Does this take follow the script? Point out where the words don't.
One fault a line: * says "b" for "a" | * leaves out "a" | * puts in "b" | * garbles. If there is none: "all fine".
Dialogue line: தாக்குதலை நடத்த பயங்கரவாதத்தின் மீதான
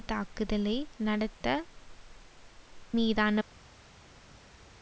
* leaves out "பயங்கரவாதத்தின்"